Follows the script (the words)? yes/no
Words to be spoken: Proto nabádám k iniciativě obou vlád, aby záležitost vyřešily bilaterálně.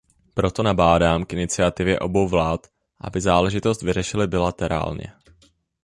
yes